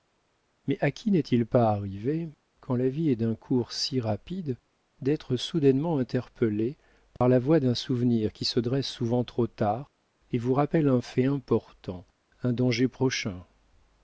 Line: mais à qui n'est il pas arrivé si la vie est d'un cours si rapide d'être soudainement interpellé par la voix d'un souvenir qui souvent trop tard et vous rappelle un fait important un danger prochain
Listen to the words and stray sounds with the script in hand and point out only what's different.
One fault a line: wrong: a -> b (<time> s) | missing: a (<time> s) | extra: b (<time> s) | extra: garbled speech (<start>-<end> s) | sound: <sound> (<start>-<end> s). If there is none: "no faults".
wrong: si -> quand (2.6 s)
sound: dropout (7.2-7.2 s)
extra: se dresse (8.4 s)